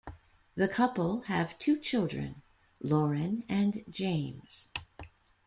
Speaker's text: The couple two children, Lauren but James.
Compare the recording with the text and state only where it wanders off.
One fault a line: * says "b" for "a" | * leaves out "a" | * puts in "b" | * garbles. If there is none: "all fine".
* puts in "have"
* says "and" for "but"